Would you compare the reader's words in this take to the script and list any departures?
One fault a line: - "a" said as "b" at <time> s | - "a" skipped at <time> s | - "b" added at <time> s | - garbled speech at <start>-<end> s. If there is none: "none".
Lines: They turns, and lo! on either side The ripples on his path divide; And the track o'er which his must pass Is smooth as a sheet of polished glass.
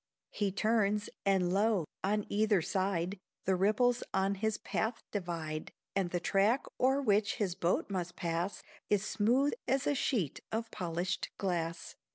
- "They" said as "He" at 0.3 s
- "boat" added at 7.5 s